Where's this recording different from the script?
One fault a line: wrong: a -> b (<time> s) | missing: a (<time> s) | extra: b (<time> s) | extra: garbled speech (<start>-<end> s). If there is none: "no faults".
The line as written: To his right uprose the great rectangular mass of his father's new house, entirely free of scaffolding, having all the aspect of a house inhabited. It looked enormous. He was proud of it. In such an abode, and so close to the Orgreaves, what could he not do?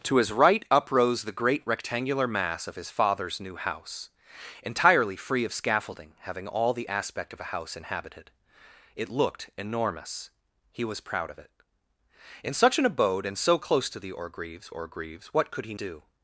extra: Orgreaves (14.7 s)
missing: not (15.7 s)